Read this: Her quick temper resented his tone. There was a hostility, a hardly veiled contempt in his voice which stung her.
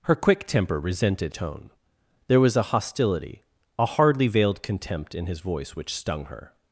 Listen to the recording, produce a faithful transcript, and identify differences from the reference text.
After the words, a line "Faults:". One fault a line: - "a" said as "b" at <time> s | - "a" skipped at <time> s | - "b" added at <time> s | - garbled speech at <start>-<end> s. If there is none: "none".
Her quick temper resented tone. There was a hostility, a hardly veiled contempt in his voice which stung her.
Faults:
- "his" skipped at 1.4 s